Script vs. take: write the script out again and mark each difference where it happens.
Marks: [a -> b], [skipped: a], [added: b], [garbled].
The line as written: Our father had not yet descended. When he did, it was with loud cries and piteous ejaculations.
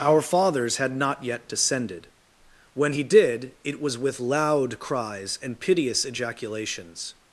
Our [father -> fathers] had not yet descended. When he did, it was with loud cries and piteous ejaculations.